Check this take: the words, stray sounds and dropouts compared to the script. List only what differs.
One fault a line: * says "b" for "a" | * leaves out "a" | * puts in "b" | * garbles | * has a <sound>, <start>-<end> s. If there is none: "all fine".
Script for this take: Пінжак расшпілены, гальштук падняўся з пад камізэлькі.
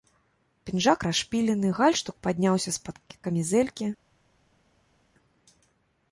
all fine